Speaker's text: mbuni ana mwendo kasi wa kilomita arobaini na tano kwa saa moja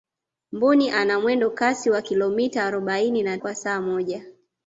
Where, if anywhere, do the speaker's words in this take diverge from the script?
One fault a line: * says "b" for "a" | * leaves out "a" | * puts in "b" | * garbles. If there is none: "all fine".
* leaves out "tano"